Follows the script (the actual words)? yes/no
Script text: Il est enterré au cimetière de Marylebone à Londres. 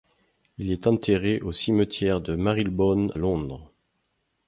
no